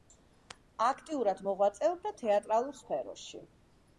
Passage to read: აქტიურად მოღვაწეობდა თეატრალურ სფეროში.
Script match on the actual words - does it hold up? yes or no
yes